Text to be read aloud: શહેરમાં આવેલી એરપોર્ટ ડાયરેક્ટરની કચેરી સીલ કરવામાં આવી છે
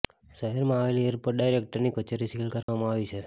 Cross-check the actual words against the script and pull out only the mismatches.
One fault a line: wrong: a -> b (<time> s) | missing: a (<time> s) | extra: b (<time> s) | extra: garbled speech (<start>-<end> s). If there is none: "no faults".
no faults